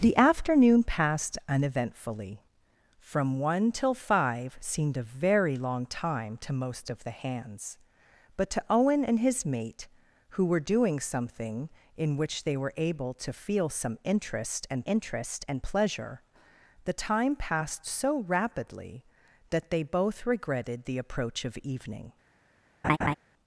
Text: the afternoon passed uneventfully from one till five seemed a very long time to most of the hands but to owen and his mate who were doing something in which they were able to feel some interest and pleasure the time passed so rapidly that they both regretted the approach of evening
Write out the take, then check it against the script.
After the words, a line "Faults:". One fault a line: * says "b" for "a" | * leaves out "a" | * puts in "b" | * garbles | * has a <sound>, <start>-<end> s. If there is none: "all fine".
the afternoon passed uneventfully from one till five seemed a very long time to most of the hands but to owen and his mate who were doing something in which they were able to feel some interest and interest and pleasure the time passed so rapidly that they both regretted the approach of evening
Faults:
* puts in "interest and"
* has a laugh, 22.8-23.1 s